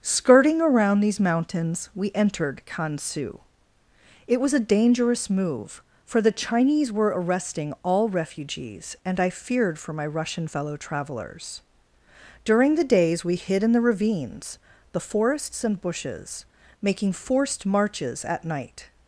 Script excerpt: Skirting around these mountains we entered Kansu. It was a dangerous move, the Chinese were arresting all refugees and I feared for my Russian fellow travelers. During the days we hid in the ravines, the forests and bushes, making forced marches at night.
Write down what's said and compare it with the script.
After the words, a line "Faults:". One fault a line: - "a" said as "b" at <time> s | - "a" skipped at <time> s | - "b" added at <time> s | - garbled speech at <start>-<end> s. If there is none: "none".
Skirting around these mountains we entered Kansu. It was a dangerous move, for the Chinese were arresting all refugees and I feared for my Russian fellow travelers. During the days we hid in the ravines, the forests and bushes, making forced marches at night.
Faults:
- "for" added at 6.0 s